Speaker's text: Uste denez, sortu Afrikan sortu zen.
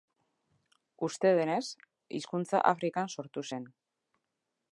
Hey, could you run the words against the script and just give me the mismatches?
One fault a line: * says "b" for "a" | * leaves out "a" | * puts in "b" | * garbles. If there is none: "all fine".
* says "hizkuntza" for "sortu"